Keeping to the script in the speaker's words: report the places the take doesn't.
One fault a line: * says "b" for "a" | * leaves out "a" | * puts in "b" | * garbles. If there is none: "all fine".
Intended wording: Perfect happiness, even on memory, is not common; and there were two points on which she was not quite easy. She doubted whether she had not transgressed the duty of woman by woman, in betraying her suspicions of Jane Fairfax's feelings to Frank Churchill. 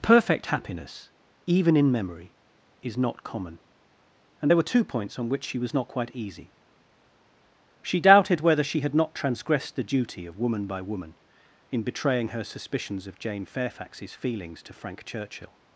* says "in" for "on"